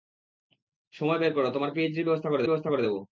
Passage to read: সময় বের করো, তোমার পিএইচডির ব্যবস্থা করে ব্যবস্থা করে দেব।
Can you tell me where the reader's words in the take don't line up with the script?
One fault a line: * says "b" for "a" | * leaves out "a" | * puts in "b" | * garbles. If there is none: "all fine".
all fine